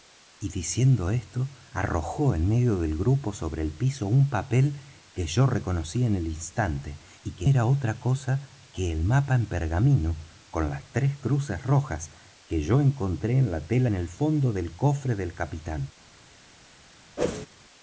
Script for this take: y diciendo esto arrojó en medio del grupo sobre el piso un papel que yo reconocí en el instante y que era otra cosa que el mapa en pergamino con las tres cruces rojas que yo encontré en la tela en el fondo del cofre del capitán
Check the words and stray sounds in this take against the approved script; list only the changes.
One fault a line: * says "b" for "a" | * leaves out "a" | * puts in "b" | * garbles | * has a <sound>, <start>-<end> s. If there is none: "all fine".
* has a whoosh, 17.2-17.5 s